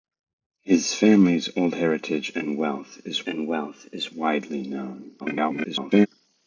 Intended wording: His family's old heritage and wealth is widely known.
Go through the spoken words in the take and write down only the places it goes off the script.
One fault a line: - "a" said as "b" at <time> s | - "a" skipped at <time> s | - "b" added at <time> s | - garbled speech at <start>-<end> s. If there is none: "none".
- "and wealth is" added at 3.2 s
- garbled speech at 5.2-6.1 s